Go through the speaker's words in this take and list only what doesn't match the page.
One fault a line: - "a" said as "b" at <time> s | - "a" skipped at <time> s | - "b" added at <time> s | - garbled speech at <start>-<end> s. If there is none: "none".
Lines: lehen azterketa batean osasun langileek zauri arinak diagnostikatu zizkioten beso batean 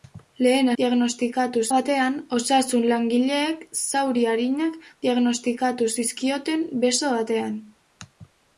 - "azterketa" said as "diagnostikatu" at 0.8 s